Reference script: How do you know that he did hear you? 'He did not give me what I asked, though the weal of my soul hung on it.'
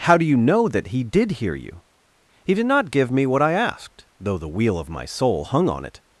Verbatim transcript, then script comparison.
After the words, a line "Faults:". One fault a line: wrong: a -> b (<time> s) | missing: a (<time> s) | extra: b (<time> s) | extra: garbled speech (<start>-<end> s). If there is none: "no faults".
How do you know that he did hear you? 'He did not give me what I asked, though the weal of my soul hung on it.'
Faults:
no faults